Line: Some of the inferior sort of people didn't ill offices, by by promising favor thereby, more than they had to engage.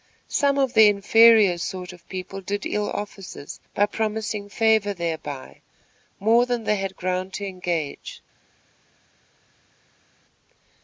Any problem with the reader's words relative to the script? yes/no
yes